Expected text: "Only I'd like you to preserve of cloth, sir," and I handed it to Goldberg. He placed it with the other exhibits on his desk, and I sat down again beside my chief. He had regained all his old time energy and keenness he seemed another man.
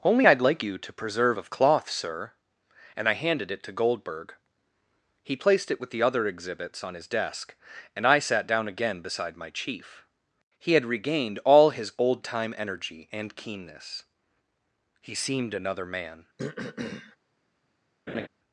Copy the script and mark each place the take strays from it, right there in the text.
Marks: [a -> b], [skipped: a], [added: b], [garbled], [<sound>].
"Only I'd like you to preserve of cloth, sir," and I handed it to Goldberg. He placed it with the other exhibits on his desk, and I sat down again beside my chief. He had regained all his old time energy and keenness he seemed another man. [throat clearing] [laugh]